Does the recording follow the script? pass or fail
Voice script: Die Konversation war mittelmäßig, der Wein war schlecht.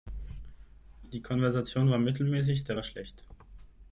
fail